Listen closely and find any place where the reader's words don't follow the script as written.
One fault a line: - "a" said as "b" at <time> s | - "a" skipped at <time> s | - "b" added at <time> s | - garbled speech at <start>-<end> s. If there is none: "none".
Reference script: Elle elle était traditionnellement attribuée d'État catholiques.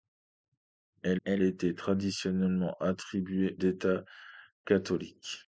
none